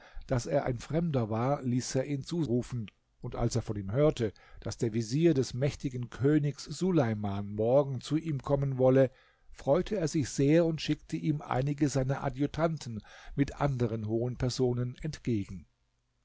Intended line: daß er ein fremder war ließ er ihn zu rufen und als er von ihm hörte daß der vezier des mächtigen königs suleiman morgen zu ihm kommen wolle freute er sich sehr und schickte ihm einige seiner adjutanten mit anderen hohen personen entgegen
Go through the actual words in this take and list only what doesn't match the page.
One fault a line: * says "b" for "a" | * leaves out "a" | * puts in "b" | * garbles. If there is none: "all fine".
all fine